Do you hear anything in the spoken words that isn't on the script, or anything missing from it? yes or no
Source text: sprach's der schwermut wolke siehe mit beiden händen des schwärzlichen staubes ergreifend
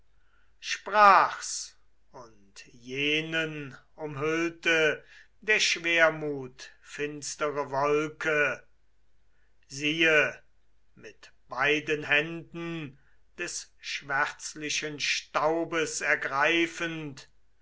yes